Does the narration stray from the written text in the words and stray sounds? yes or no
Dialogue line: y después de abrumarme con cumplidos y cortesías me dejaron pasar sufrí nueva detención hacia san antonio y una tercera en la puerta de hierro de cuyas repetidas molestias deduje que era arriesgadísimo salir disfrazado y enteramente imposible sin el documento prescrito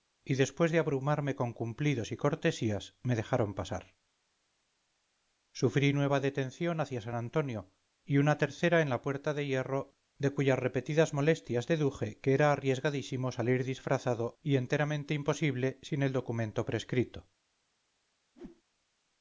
yes